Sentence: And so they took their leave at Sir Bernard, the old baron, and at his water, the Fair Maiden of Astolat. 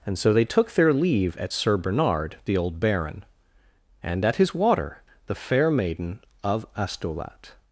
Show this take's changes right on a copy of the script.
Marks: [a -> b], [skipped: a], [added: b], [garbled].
And so they took their leave at Sir Bernard, the old baron, and at his water, the Fair Maiden of Astolat.